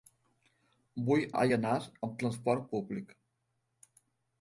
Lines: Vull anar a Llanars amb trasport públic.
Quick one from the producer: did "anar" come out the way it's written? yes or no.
no